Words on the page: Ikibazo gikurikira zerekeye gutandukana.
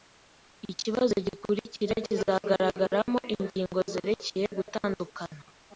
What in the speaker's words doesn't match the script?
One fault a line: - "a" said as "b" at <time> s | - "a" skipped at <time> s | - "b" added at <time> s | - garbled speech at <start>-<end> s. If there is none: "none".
- "kizagaragaramo ingingo" added at 2.0 s